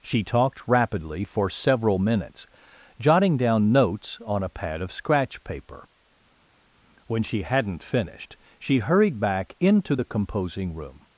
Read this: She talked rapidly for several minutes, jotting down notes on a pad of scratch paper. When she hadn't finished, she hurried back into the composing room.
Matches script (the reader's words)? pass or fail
pass